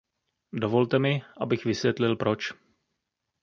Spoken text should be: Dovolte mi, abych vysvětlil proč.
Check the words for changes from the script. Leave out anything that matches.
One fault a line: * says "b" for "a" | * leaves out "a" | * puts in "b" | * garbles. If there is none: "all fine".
all fine